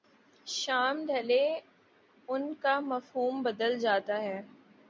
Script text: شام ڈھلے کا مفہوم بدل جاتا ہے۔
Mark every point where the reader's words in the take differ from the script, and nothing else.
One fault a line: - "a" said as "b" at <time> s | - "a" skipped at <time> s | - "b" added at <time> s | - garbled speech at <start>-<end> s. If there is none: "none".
- "ان" added at 2.3 s